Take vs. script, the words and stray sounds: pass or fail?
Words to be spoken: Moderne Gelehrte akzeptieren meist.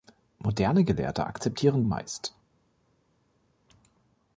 pass